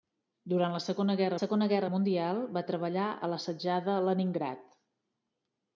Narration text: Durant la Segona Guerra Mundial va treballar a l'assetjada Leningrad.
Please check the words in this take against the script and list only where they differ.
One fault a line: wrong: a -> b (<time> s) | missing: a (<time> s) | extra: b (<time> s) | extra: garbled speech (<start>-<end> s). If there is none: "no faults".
extra: Segona Guerra (1.4 s)